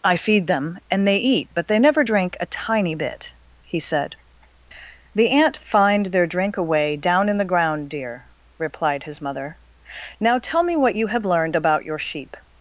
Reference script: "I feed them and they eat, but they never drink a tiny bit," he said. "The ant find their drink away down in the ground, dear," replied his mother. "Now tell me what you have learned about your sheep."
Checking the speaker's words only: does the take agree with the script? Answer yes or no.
yes